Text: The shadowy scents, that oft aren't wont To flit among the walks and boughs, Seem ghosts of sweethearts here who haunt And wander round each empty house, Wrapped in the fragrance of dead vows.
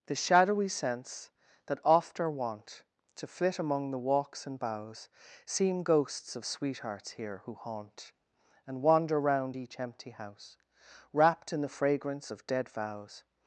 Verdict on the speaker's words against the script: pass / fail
fail